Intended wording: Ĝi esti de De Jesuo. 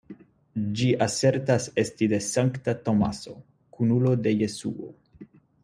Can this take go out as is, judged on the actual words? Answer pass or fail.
fail